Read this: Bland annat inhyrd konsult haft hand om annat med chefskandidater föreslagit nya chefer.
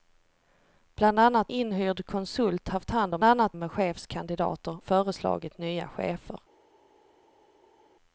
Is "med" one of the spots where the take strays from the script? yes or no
no